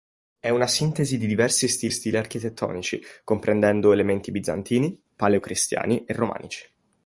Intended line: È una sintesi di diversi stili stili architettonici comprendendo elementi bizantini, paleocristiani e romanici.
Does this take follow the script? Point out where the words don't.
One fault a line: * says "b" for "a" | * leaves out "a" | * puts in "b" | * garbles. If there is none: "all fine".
all fine